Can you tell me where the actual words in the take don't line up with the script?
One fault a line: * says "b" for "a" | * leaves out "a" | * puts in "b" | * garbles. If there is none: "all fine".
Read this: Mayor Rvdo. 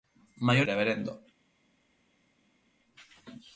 all fine